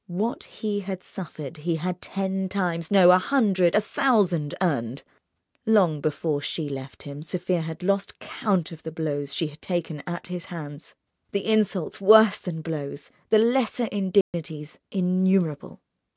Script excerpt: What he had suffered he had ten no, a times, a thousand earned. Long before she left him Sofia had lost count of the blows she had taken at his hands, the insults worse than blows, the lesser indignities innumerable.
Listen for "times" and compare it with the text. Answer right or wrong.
wrong